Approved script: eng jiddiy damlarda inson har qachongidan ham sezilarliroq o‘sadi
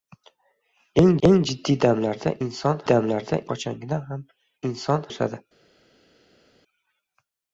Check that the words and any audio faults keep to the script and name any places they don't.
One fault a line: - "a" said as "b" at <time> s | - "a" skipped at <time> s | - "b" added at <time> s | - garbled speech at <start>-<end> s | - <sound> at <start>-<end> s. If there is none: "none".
- "eng" added at 1.3 s
- "har" said as "damlarda" at 2.9 s
- "sezilarliroq" said as "inson" at 4.7 s